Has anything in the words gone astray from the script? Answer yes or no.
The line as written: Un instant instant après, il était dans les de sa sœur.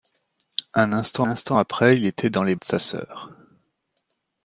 no